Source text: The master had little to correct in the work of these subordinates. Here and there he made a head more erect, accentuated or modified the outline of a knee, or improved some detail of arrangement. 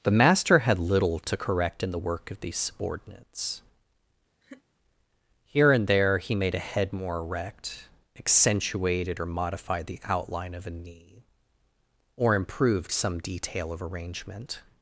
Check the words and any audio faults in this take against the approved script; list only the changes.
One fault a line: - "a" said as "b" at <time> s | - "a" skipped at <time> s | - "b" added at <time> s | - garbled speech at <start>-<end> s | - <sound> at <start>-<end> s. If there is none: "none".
- laugh at 4.4-4.6 s